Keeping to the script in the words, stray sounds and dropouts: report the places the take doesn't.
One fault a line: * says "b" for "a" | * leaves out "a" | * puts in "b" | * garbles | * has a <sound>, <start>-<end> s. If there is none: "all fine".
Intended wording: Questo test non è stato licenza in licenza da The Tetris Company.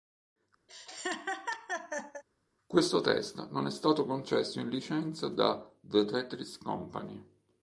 * has a laugh, 0.7-2.2 s
* says "concesso" for "licenza"